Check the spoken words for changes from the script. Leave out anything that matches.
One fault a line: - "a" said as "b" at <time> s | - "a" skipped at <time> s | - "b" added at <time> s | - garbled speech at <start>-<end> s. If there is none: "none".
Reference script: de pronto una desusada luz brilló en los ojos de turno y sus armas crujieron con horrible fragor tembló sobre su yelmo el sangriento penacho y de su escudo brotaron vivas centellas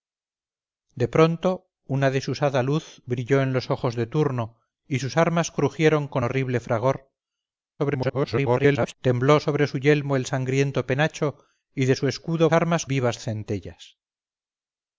- garbled speech at 7.8-8.9 s
- "brotaron" said as "armas" at 12.5 s